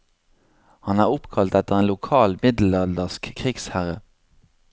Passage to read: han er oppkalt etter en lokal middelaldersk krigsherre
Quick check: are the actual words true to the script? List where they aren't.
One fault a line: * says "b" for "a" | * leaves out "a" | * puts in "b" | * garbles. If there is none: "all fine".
all fine